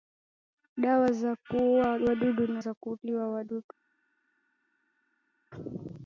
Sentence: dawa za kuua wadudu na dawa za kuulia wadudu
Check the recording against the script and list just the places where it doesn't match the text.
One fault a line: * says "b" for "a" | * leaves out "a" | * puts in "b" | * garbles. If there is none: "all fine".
* leaves out "dawa"